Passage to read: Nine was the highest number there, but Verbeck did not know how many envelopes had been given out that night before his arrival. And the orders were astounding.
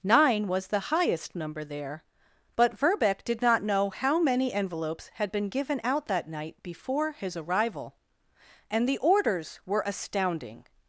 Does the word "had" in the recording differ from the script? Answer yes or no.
no